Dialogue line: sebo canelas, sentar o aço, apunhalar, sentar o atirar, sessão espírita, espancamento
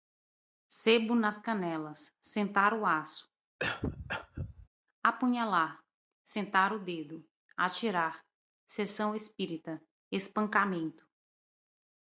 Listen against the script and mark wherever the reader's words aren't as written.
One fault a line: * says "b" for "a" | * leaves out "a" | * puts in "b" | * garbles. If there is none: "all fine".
* puts in "nas"
* puts in "dedo"